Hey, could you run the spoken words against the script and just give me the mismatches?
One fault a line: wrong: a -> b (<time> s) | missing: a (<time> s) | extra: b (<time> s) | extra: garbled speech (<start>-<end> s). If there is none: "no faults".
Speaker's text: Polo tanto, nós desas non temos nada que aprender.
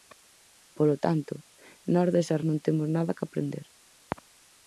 no faults